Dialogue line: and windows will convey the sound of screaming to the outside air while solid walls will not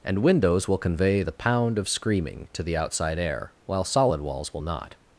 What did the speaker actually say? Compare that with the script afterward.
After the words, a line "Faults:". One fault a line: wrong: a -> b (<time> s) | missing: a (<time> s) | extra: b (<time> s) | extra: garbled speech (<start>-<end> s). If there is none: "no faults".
and windows will convey the pound of screaming to the outside air while solid walls will not
Faults:
wrong: sound -> pound (1.3 s)